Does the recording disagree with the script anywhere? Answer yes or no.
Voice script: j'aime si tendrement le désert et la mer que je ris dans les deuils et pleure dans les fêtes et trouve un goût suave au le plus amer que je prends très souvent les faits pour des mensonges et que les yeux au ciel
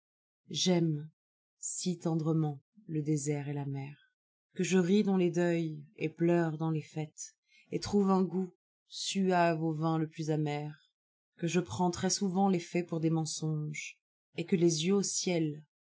yes